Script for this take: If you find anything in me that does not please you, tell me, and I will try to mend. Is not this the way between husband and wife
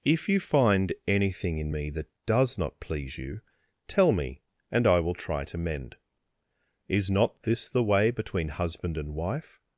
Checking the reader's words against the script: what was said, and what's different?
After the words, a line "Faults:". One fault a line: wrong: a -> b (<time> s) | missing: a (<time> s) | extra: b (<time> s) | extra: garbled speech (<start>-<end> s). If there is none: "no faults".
If you find anything in me that does not please you, tell me, and I will try to mend. Is not this the way between husband and wife
Faults:
no faults